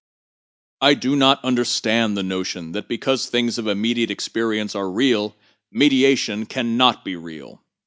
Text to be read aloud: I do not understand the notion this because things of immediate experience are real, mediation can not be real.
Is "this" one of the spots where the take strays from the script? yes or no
yes